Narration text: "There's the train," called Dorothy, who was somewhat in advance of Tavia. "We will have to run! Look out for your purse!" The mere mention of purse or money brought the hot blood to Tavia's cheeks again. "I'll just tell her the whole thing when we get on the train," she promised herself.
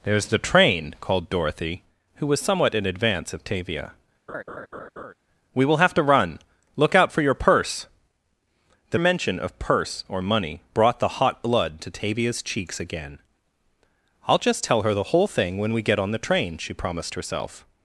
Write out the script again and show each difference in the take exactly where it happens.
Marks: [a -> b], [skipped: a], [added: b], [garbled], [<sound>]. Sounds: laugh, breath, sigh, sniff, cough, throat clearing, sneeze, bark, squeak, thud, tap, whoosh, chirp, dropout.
"There's the train," called Dorothy, who was somewhat in advance of Tavia. [laugh] "We will have to run! Look out for your purse!" The [skipped: mere] mention of purse or money brought the hot blood to Tavia's cheeks again. "I'll just tell her the whole thing when we get on the train," she promised herself.